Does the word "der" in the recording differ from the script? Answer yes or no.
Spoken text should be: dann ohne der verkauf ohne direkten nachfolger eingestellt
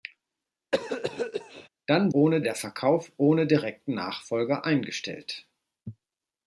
no